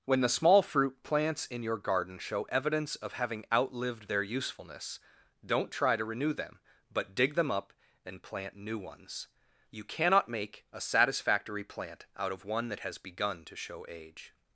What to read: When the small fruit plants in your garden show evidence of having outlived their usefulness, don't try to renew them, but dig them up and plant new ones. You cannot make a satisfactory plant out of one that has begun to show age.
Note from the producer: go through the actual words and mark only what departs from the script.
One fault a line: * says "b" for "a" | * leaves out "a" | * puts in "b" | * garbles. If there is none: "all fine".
all fine